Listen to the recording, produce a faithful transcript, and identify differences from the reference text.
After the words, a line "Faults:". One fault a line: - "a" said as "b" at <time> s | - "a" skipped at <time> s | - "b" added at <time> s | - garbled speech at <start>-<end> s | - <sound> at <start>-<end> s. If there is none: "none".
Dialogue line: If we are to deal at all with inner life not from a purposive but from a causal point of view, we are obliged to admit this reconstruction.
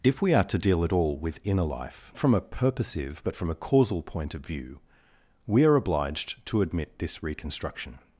If we are to deal at all with inner life from a purposive but from a causal point of view, we are obliged to admit this reconstruction.
Faults:
- "not" skipped at 2.1 s